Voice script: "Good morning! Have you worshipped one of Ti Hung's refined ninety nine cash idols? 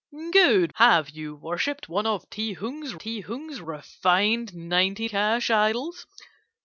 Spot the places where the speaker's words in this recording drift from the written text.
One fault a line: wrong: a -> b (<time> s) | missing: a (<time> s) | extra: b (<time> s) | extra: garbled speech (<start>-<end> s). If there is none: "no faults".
missing: morning (0.7 s)
extra: Ti Hung's (3.0 s)
missing: nine (5.1 s)